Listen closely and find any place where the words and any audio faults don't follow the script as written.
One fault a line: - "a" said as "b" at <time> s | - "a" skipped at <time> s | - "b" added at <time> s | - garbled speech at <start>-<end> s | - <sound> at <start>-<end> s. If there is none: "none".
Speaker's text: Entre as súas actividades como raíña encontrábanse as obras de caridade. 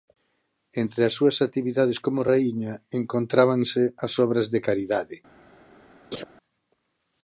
- laugh at 6.1-6.2 s